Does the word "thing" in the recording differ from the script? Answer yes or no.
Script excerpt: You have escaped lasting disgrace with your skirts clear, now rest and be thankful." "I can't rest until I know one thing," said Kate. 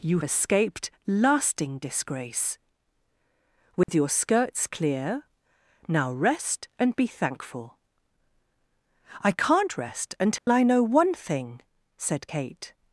no